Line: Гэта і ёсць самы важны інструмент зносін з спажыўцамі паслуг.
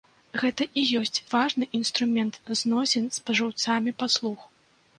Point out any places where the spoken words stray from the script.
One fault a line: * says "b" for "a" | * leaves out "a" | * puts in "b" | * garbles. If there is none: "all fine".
* leaves out "самы"